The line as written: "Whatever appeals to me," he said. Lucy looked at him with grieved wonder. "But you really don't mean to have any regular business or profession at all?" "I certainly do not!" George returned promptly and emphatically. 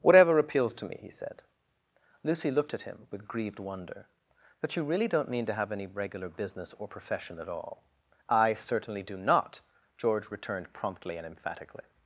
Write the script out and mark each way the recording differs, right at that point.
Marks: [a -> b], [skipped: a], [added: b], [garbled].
"Whatever appeals to me," he said. Lucy looked at him with grieved wonder. "But you really don't mean to have any regular business or profession at all?" "I certainly do not!" George returned promptly and emphatically.